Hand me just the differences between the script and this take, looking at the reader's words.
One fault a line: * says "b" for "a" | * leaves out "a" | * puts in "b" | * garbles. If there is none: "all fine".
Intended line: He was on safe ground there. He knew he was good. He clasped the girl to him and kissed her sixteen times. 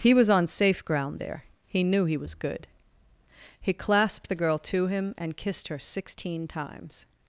all fine